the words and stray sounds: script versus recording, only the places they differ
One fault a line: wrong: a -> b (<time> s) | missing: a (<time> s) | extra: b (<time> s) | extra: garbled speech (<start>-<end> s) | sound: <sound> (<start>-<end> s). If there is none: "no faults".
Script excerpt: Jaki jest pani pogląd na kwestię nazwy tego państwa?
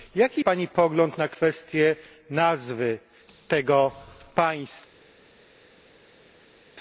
missing: jest (0.4 s)